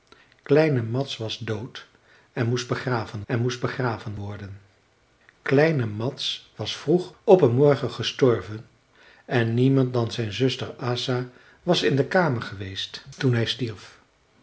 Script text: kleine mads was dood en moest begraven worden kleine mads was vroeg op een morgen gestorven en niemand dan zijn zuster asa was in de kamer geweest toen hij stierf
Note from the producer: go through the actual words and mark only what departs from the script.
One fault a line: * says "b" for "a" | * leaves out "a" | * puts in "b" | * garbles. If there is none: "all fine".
* puts in "en moest begraven"